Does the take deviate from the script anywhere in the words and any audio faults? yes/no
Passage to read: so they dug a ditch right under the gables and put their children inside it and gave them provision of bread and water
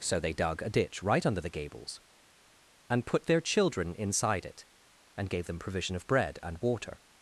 no